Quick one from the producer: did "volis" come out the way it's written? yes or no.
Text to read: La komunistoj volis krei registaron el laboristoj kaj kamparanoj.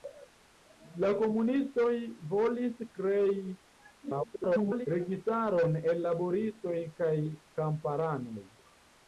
yes